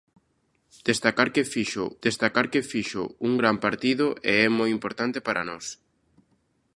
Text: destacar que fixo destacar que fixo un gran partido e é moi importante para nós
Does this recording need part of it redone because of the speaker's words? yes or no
no